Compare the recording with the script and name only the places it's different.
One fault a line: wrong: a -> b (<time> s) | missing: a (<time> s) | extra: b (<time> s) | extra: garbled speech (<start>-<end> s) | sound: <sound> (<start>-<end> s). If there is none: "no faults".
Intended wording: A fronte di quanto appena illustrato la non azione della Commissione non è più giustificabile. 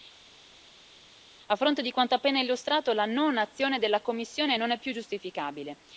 no faults